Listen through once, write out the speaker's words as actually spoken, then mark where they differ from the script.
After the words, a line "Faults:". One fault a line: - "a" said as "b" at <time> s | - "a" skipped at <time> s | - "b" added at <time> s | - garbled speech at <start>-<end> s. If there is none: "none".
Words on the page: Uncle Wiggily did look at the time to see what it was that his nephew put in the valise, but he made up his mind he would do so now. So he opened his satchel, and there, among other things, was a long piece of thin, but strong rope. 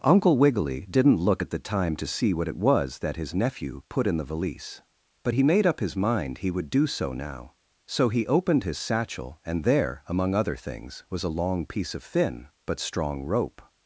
Uncle Wiggily didn't look at the time to see what it was that his nephew put in the valise, but he made up his mind he would do so now. So he opened his satchel, and there, among other things, was a long piece of thin, but strong rope.
Faults:
- "did" said as "didn't" at 0.9 s